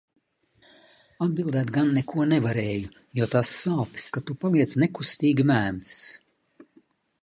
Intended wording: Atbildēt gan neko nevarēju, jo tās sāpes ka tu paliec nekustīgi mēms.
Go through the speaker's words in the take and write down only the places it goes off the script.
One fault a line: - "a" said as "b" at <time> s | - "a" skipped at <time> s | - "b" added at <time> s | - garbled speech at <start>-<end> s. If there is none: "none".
none